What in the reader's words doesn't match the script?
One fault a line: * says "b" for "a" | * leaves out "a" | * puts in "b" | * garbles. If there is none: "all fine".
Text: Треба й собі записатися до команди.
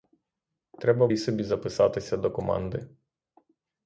all fine